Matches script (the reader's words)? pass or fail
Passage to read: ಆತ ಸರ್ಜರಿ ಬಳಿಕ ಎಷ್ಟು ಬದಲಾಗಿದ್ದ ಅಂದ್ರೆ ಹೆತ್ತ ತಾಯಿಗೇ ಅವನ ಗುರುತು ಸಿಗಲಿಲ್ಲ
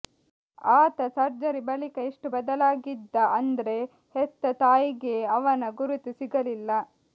pass